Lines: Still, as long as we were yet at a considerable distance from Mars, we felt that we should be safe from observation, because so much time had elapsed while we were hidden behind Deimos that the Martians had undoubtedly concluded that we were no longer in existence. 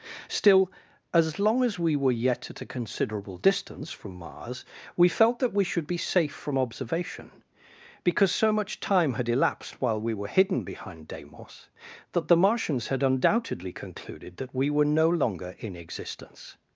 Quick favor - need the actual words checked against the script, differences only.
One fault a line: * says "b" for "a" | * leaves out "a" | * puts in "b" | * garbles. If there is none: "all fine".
all fine